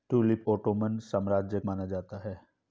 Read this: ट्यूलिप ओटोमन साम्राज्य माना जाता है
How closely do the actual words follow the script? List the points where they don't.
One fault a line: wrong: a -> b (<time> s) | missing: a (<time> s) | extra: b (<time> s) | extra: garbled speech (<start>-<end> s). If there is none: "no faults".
no faults